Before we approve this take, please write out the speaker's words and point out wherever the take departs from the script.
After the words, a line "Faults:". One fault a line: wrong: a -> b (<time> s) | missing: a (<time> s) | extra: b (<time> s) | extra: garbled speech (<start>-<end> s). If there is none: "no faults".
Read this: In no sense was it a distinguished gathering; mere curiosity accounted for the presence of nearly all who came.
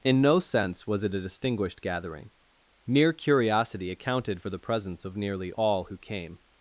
In no sense was it a distinguished gathering; mere curiosity accounted for the presence of nearly all who came.
Faults:
no faults